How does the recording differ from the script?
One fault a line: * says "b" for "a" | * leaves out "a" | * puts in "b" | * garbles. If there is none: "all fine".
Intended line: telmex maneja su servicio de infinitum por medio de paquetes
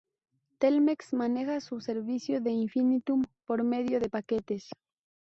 all fine